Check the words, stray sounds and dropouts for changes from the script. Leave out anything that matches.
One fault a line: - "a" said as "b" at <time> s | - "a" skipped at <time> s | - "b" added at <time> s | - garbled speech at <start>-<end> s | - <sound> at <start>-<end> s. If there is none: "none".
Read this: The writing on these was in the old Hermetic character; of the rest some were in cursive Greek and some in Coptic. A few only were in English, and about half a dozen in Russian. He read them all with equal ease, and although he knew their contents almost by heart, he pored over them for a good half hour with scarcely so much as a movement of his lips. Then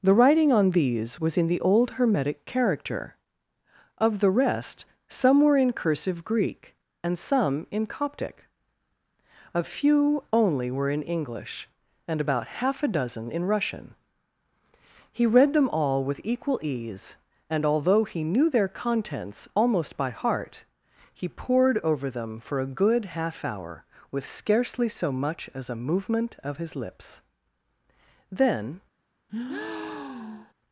- breath at 29.3-30.5 s